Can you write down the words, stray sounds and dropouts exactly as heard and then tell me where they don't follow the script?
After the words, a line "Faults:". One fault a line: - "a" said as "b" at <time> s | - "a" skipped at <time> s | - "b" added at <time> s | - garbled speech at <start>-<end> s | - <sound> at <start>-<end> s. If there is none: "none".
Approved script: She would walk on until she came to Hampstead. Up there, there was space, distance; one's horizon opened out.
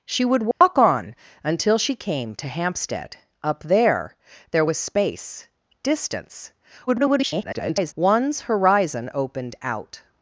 She would walk on until she came to Hampstead. Up there, there was space, distance; [garbled] one's horizon opened out.
Faults:
- dropout at 0.5-0.6 s
- garbled speech at 6.9-7.9 s